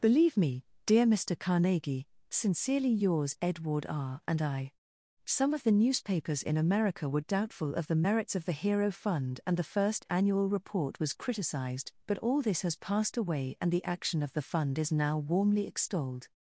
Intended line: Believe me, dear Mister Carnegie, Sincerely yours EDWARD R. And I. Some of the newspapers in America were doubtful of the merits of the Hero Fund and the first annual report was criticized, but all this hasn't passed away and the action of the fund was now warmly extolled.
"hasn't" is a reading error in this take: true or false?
true